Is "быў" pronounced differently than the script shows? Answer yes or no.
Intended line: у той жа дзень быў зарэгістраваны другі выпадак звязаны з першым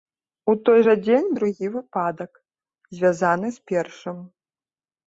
yes